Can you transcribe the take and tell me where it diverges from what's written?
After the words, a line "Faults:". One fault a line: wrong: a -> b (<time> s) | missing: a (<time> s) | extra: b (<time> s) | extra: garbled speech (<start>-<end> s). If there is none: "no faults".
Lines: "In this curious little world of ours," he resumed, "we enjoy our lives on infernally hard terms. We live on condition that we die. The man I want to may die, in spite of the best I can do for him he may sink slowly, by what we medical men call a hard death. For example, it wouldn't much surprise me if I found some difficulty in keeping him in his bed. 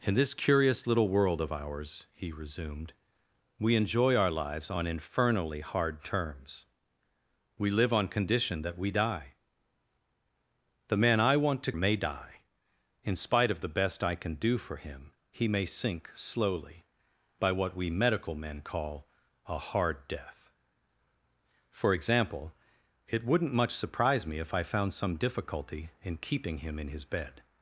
"In this curious little world of ours," he resumed, "we enjoy our lives on infernally hard terms. We live on condition that we die. The man I want to may die, in spite of the best I can do for him he may sink slowly, by what we medical men call a hard death. For example, it wouldn't much surprise me if I found some difficulty in keeping him in his bed.
Faults:
no faults